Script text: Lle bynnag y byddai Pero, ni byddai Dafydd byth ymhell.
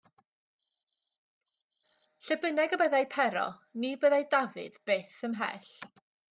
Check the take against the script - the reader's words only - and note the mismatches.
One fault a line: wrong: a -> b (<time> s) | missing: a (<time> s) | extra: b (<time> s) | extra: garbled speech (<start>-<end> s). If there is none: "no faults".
no faults